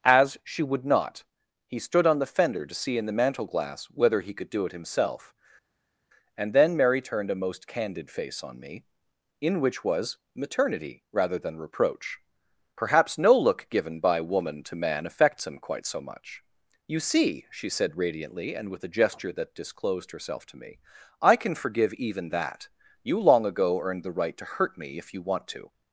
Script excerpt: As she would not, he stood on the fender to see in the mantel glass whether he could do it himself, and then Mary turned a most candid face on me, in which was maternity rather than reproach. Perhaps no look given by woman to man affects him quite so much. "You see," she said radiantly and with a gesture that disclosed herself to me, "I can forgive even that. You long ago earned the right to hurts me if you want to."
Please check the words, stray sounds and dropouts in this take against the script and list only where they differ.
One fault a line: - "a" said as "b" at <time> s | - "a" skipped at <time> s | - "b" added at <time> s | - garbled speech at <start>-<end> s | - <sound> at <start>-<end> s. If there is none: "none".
- "hurts" said as "hurt" at 24.5 s